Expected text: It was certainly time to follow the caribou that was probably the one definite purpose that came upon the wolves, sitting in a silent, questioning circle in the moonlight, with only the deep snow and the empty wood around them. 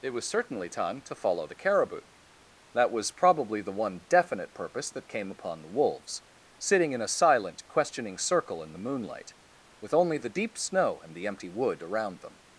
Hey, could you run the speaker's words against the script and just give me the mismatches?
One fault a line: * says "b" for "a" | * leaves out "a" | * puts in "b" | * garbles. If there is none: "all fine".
all fine